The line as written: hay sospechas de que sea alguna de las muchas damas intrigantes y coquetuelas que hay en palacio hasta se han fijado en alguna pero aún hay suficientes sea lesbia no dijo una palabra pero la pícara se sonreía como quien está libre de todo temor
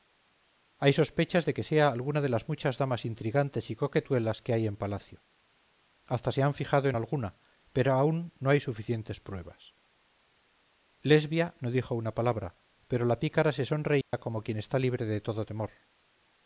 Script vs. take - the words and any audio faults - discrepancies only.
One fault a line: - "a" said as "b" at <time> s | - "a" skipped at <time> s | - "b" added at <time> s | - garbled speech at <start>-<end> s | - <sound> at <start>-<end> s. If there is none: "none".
- "no" added at 8.4 s
- "sea" said as "pruebas" at 9.2 s
- dropout at 14.0-14.1 s